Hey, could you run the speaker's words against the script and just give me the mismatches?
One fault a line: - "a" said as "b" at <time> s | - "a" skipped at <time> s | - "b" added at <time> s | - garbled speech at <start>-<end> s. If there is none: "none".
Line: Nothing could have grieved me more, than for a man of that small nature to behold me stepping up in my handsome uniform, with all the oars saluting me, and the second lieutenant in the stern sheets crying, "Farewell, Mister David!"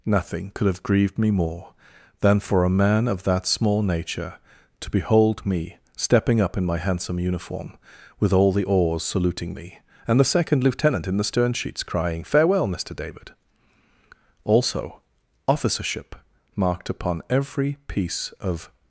- "also officership marked upon every piece of" added at 14.4 s